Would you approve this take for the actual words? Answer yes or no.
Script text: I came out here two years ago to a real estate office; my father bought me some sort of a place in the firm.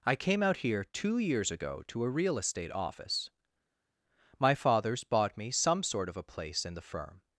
no